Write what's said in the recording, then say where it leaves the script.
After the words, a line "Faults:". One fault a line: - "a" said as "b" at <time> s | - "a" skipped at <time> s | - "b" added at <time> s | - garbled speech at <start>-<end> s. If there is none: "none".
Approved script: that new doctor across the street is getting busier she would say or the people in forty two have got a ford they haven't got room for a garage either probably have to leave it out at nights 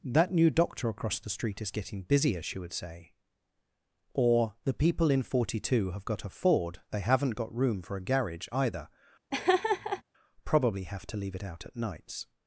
that new doctor across the street is getting busier she would say or the people in forty two have got a ford they haven't got room for a garage either probably have to leave it out at nights
Faults:
none